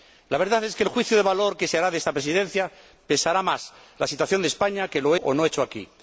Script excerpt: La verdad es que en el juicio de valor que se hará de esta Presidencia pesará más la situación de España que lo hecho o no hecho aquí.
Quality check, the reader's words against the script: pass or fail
fail